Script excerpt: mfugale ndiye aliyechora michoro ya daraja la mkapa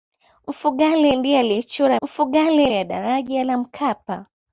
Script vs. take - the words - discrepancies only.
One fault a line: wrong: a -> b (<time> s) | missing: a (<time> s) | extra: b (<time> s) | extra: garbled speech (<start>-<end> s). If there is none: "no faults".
wrong: michoro -> mfugale (2.0 s)